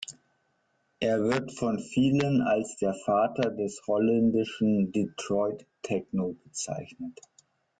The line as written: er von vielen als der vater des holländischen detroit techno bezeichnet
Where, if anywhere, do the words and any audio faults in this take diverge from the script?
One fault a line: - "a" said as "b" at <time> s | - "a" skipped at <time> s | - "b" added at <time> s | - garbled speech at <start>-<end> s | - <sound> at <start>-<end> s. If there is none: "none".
- "wird" added at 1.2 s